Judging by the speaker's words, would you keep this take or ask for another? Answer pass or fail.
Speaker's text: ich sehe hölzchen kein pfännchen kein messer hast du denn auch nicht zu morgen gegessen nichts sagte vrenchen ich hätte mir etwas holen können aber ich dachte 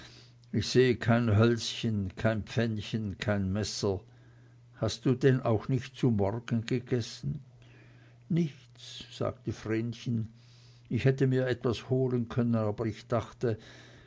fail